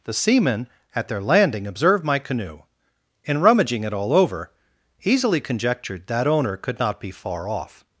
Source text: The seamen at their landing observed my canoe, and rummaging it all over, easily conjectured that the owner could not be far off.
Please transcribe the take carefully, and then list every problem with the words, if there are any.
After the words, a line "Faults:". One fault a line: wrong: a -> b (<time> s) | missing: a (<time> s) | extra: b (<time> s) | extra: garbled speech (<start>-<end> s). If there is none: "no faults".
The seamen at their landing observed my canoe, and rummaging it all over, easily conjectured that owner could not be far off.
Faults:
missing: the (6.3 s)